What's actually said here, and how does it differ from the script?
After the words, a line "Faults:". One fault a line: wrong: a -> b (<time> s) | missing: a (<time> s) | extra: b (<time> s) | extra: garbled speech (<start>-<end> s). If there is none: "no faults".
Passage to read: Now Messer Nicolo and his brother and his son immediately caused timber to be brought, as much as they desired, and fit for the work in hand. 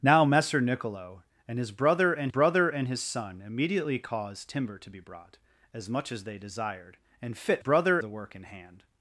Now Messer Nicolo and his brother and brother and his son immediately caused timber to be brought, as much as they desired, and fit brother the work in hand.
Faults:
extra: brother and (2.3 s)
wrong: for -> brother (7.6 s)